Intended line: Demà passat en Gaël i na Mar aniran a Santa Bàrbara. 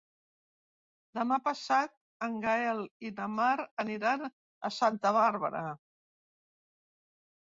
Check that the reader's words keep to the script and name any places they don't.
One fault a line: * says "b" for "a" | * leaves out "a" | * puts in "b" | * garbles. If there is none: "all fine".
all fine